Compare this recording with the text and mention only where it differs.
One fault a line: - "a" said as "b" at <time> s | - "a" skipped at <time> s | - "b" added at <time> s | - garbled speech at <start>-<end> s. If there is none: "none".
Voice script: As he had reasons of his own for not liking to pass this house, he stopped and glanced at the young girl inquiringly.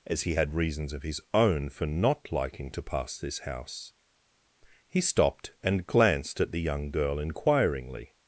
none